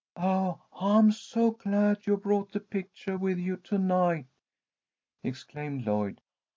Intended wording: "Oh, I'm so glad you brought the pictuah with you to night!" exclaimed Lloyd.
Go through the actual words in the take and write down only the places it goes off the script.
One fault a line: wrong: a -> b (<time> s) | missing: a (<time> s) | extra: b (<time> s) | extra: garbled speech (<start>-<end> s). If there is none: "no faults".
no faults